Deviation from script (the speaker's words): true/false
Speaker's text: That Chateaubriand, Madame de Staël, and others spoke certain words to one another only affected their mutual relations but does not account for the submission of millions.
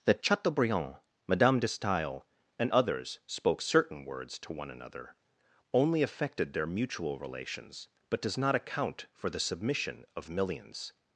false